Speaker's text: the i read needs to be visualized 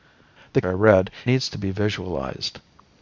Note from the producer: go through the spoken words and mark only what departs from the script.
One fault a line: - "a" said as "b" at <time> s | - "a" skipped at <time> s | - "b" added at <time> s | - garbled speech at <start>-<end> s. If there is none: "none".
none